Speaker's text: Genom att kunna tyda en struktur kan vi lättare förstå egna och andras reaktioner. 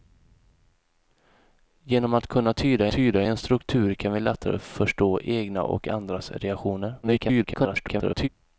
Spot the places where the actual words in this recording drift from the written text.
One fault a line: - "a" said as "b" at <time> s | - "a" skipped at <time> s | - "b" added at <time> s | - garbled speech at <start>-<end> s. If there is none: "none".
- "tyda" added at 2.9 s
- garbled speech at 7.0-8.3 s